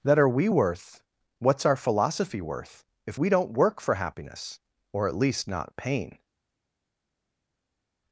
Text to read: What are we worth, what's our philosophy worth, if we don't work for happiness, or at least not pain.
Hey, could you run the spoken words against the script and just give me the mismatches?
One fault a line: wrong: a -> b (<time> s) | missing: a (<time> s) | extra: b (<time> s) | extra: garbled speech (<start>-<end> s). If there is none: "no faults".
wrong: What -> That (0.0 s)